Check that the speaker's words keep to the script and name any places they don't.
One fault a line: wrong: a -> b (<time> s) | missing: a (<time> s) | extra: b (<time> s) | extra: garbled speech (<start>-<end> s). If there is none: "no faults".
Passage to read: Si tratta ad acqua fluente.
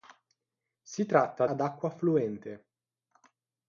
no faults